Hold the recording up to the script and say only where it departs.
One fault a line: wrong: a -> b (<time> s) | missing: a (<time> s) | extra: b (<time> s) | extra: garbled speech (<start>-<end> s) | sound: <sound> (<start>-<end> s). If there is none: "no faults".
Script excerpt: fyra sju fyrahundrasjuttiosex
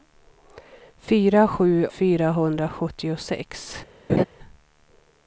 sound: laugh (4.1-4.2 s)